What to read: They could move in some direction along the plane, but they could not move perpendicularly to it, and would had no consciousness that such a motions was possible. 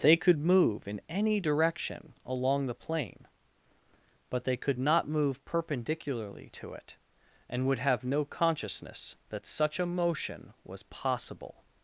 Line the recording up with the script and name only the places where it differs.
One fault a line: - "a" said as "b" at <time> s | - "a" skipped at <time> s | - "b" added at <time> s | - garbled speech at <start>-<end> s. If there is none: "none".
- "some" said as "any" at 1.1 s
- "had" said as "have" at 7.8 s
- "motions" said as "motion" at 9.9 s